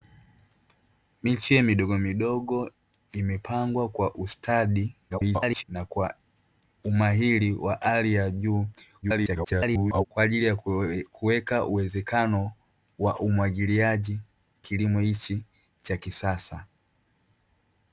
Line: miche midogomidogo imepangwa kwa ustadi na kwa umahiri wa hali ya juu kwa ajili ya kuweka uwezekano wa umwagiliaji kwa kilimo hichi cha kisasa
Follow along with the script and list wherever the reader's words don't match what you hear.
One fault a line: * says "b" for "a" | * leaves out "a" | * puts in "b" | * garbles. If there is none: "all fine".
* garbles
* garbles
* leaves out "kwa"